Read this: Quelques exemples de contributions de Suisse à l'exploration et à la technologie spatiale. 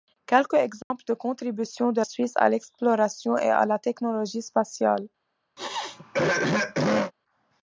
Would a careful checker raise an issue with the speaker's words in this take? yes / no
no